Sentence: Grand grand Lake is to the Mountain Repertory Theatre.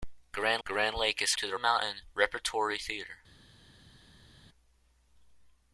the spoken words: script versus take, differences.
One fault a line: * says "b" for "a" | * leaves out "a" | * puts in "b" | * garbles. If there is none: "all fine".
all fine